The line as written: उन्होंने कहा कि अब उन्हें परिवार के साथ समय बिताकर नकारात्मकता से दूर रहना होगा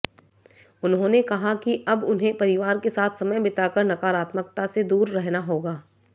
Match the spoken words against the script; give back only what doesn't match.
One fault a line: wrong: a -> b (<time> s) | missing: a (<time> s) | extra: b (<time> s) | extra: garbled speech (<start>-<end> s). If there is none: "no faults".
no faults